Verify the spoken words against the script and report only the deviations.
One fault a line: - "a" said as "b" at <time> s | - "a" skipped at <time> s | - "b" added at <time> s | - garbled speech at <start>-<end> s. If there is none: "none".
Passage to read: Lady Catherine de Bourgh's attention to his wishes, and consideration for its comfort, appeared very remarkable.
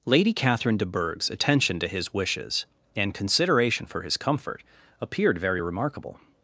- "its" said as "his" at 4.0 s